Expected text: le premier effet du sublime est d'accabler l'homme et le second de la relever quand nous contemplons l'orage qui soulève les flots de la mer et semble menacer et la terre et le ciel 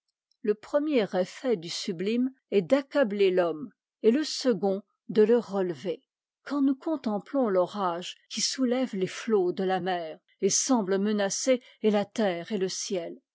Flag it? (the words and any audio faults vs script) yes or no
yes